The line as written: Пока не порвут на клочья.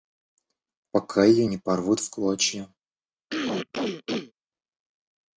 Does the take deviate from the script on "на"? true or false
true